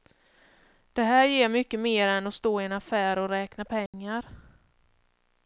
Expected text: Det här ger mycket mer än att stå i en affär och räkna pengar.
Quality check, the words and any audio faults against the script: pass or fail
fail